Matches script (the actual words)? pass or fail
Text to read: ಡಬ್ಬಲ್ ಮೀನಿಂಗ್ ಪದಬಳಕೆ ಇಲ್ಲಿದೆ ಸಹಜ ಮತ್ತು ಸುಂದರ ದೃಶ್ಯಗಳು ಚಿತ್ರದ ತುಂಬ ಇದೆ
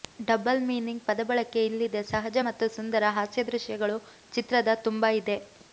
fail